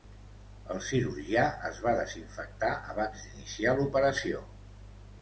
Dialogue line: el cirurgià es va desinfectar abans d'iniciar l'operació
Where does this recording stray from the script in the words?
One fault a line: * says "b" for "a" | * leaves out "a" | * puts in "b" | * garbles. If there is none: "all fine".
all fine